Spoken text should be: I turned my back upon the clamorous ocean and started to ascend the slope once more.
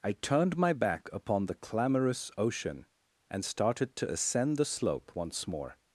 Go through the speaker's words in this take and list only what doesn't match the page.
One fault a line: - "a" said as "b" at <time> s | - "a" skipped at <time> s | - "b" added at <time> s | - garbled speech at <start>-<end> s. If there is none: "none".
none